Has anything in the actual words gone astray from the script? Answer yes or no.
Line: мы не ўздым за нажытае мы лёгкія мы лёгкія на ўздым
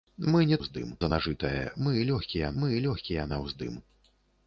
no